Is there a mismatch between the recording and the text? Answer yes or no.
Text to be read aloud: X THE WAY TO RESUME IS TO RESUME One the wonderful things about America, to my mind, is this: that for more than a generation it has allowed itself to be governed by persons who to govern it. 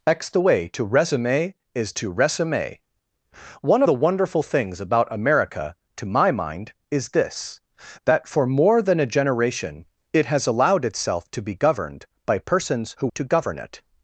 no